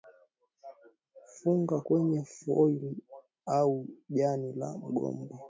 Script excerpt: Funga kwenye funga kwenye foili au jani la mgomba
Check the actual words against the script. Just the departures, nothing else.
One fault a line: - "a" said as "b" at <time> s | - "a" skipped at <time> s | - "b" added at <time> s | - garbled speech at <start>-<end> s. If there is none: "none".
- "funga kwenye" skipped at 2.2 s